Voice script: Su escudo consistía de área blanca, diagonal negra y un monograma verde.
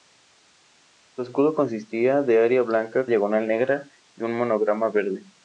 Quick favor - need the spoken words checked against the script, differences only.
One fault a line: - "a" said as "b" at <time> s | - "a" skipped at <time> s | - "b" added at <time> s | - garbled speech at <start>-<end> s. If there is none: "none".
none